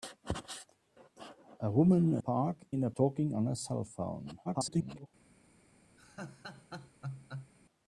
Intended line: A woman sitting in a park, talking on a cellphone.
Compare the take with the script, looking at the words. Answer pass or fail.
fail